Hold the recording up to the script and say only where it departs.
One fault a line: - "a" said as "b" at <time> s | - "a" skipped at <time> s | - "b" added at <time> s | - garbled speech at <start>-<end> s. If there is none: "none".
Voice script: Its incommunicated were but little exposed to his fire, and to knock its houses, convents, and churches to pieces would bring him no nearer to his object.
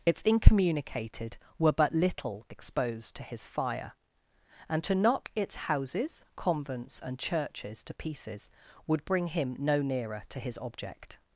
none